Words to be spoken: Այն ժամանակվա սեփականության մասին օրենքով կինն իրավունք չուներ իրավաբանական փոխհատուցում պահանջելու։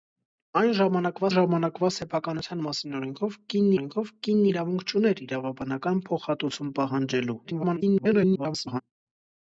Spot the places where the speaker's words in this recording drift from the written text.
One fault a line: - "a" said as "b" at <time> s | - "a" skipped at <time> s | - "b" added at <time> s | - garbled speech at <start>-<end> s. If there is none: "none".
- "ժամանակվա" added at 1.3 s
- "օրենքով կինն" added at 3.7 s
- garbled speech at 7.4-8.8 s